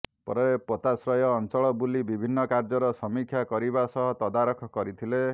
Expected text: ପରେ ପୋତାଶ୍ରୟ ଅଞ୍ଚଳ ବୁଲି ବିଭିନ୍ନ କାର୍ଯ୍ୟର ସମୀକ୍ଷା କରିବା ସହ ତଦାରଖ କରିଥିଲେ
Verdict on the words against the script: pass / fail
pass